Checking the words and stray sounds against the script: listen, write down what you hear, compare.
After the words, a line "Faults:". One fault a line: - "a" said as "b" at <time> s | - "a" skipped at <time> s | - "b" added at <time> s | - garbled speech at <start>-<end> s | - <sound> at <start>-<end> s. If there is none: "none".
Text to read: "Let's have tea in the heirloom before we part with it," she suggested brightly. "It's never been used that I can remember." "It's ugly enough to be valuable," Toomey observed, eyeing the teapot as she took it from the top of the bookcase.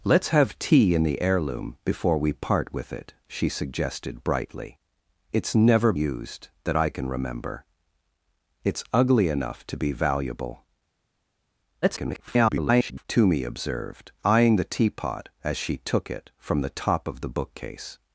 "Let's have tea in the heirloom before we part with it," she suggested brightly. "It's never used that I can remember." "It's ugly enough to be valuable," [garbled] Toomey observed, eyeing the teapot as she took it from the top of the bookcase.
Faults:
- "been" skipped at 5.9 s
- garbled speech at 11.8-13.1 s